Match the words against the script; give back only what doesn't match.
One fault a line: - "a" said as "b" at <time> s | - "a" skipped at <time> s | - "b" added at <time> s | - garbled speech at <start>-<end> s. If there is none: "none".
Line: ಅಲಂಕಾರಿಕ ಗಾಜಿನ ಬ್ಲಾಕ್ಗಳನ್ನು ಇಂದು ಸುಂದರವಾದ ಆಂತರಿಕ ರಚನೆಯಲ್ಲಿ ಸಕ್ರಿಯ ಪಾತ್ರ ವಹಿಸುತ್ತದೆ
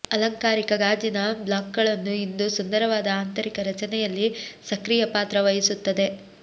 none